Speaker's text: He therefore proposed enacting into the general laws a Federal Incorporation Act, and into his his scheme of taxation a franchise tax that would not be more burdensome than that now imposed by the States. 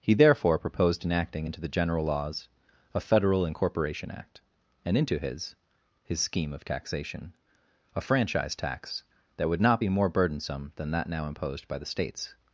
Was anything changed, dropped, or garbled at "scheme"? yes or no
no